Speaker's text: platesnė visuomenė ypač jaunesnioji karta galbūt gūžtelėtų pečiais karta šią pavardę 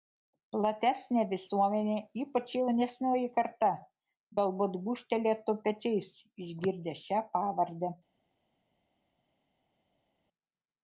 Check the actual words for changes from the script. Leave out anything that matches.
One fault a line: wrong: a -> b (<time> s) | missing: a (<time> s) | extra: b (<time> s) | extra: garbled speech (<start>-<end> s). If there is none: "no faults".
wrong: karta -> išgirdę (6.5 s)